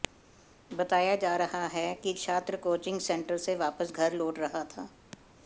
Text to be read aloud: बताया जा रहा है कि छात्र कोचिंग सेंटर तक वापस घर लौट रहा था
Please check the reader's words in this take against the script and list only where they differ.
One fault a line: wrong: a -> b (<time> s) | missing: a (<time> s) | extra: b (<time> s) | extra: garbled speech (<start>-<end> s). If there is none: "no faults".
wrong: तक -> से (3.4 s)